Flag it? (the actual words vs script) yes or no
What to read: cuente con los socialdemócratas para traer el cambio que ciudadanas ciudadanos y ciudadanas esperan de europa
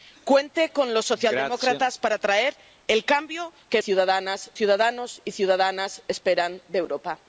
no